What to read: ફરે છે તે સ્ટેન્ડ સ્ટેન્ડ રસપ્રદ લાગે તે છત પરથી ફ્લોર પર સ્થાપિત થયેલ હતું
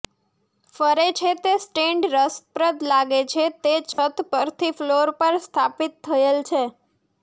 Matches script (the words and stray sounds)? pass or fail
fail